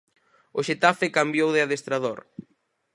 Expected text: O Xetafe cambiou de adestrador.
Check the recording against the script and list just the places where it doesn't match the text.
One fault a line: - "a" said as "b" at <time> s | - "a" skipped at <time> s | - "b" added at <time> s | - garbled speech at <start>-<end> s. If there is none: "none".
none